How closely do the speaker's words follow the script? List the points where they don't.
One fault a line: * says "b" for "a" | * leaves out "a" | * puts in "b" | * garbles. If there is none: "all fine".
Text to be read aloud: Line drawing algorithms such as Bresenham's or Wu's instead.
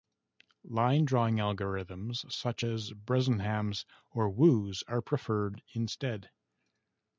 * puts in "are preferred"